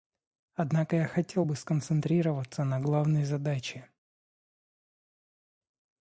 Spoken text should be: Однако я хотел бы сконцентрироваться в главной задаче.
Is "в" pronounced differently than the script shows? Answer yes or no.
yes